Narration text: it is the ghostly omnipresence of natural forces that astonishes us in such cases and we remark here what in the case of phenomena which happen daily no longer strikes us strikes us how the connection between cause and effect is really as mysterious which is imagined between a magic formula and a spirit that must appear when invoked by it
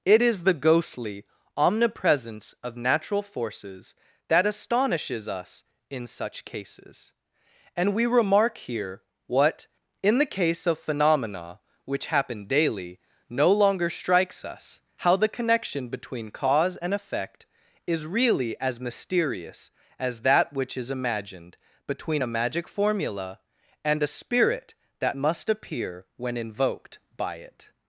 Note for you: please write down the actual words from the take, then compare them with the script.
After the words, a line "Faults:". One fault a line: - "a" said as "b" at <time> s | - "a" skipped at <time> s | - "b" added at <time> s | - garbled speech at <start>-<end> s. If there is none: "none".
it is the ghostly omnipresence of natural forces that astonishes us in such cases and we remark here what in the case of phenomena which happen daily no longer strikes us how the connection between cause and effect is really as mysterious as that which is imagined between a magic formula and a spirit that must appear when invoked by it
Faults:
- "strikes us" skipped at 14.8 s
- "as that" added at 20.0 s